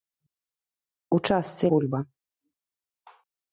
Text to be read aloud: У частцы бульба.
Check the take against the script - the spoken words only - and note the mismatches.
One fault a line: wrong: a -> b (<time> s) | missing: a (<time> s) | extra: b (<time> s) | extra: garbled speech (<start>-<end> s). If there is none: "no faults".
no faults